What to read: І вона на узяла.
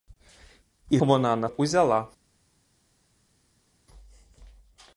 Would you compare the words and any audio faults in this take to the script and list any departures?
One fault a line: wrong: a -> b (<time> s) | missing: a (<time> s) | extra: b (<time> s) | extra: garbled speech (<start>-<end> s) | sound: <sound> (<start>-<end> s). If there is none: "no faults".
no faults